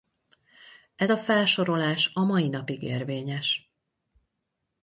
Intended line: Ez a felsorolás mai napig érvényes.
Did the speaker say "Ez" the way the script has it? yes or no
yes